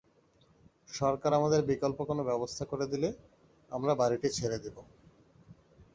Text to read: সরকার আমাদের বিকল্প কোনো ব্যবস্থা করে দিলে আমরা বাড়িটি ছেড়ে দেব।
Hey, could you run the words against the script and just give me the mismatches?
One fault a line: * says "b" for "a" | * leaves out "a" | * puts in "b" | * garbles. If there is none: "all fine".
all fine